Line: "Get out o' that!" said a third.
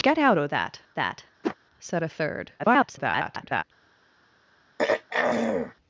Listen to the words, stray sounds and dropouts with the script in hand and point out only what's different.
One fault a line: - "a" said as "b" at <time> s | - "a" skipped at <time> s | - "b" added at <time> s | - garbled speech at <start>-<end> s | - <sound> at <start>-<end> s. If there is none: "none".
- "that" added at 0.9 s
- whoosh at 1.4-1.6 s
- garbled speech at 2.6-3.6 s
- throat clearing at 4.8-5.7 s